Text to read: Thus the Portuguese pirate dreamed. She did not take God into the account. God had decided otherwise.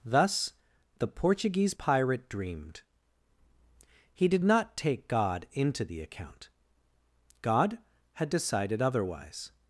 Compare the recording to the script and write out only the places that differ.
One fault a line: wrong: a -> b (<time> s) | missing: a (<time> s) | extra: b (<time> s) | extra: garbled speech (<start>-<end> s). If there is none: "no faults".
wrong: She -> He (4.1 s)